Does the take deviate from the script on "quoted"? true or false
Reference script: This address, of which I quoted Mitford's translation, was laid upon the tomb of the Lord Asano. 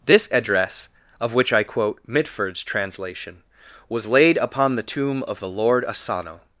true